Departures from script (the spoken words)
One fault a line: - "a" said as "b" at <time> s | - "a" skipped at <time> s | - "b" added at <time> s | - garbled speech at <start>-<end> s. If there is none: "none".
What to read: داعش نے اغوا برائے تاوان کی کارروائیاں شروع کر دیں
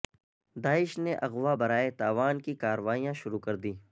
none